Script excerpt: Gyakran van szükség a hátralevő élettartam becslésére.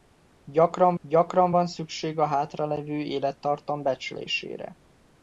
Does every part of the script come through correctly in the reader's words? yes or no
no